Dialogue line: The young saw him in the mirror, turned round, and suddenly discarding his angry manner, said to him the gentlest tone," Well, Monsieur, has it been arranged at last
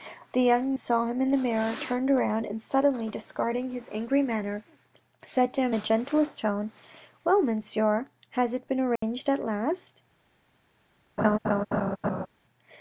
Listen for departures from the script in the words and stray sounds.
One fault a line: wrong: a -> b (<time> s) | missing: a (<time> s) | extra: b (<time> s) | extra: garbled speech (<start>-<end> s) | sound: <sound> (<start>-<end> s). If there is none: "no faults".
sound: dropout (9.0-9.0 s)
sound: laugh (11.2-12.3 s)